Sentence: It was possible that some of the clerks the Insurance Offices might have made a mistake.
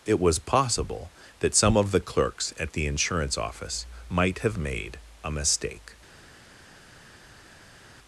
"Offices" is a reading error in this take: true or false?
true